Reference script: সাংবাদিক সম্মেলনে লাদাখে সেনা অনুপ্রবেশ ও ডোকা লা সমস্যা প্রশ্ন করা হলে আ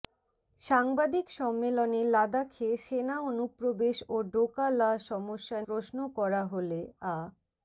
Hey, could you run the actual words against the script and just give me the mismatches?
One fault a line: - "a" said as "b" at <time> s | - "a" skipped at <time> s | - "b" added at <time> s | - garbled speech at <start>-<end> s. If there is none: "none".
none